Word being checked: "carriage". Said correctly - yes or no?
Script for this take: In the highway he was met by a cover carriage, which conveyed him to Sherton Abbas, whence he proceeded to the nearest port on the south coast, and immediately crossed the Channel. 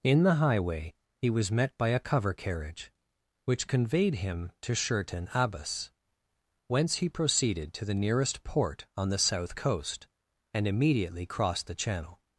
yes